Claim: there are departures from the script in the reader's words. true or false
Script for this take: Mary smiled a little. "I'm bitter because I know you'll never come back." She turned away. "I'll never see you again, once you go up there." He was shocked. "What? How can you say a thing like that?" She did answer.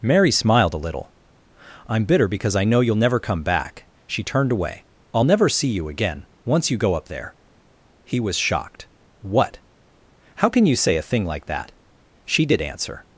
false